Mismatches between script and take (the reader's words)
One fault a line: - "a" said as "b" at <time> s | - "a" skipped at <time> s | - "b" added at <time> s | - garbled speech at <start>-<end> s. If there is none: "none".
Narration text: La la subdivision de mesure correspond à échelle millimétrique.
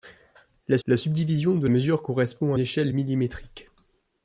none